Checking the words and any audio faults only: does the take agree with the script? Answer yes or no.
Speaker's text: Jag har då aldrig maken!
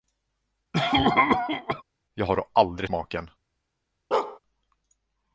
no